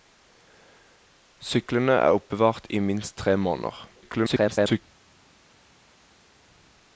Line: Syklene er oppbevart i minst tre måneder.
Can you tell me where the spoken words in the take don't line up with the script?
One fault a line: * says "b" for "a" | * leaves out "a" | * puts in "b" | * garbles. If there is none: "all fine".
* garbles